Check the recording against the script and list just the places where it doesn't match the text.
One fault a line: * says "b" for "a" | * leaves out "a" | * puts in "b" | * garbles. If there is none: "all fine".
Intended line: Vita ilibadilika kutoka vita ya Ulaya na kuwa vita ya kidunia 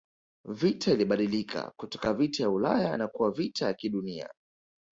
all fine